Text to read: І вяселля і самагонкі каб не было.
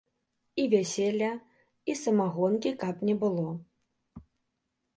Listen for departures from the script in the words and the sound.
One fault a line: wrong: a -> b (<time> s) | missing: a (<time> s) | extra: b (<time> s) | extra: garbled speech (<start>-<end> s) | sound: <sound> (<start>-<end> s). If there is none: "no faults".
no faults